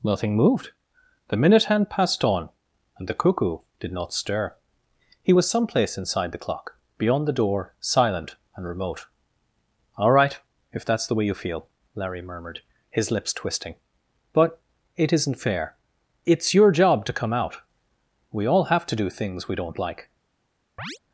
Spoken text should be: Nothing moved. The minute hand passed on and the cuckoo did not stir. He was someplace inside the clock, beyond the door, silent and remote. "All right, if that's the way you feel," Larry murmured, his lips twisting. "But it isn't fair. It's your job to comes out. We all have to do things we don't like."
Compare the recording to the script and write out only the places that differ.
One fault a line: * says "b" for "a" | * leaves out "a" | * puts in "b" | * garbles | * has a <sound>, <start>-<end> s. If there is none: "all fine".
* says "come" for "comes"
* has a chirp, 20.8-21.0 s